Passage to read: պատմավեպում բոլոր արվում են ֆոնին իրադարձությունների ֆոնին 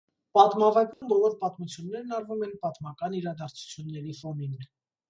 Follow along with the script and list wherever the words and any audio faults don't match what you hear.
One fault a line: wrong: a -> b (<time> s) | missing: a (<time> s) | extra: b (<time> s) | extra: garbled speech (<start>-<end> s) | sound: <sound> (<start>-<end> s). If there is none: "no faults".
sound: dropout (0.9-1.0 s)
extra: պատմություններն (1.4 s)
wrong: ֆոնին -> պատմական (2.6 s)